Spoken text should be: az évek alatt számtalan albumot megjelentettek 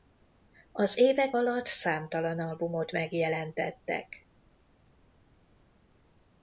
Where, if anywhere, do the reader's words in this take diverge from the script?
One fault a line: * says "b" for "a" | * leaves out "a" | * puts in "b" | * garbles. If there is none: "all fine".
all fine